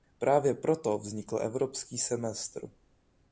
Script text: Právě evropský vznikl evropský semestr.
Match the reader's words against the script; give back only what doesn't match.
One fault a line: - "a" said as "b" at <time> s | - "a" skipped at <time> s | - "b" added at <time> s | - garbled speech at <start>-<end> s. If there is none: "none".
- "evropský" said as "proto" at 0.5 s